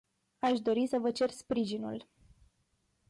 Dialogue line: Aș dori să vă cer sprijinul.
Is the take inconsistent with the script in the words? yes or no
no